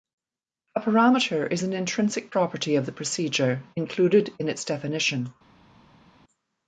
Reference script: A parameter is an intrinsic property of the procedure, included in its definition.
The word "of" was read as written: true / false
true